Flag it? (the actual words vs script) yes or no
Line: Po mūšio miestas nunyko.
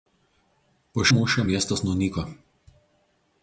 no